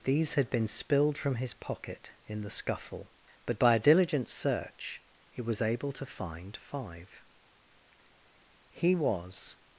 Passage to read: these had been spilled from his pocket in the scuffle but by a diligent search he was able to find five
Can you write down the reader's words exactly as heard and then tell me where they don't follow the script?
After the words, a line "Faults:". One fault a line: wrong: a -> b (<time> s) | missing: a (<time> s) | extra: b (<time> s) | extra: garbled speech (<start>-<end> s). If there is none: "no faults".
these had been spilled from his pocket in the scuffle but by a diligent search he was able to find five he was
Faults:
extra: he was (8.7 s)